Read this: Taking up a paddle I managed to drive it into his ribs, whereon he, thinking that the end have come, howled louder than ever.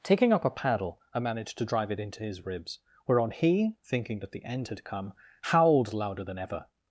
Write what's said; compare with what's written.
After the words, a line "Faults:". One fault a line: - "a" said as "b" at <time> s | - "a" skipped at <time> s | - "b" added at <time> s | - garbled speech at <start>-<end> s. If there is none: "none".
Taking up a paddle I managed to drive it into his ribs, whereon he, thinking that the end had come, howled louder than ever.
Faults:
- "have" said as "had" at 4.7 s